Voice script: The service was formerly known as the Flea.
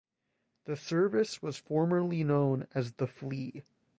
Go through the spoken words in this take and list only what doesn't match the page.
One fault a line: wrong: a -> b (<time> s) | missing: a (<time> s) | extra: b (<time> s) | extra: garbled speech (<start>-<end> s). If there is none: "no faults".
no faults